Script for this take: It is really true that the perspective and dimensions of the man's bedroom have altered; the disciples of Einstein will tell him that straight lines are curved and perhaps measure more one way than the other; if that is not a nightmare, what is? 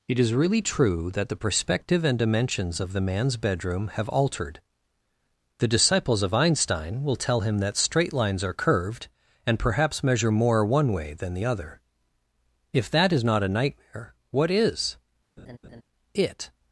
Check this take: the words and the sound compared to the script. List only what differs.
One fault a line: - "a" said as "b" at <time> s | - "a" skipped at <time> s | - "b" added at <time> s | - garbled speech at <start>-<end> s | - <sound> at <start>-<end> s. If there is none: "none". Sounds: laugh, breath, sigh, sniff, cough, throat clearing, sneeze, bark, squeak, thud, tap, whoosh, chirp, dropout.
- laugh at 15.4-15.8 s
- "It" added at 16.1 s